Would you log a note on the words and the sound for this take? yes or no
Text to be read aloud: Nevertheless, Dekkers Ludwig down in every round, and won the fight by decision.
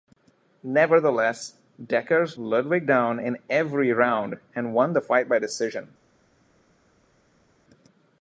no